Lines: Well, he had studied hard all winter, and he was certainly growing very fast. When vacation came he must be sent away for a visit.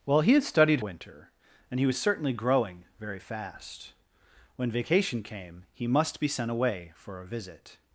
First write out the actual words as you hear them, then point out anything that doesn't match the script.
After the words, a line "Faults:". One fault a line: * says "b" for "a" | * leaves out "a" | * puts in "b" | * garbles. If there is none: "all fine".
Well, he had studied winter, and he was certainly growing very fast. When vacation came he must be sent away for a visit.
Faults:
* leaves out "hard all"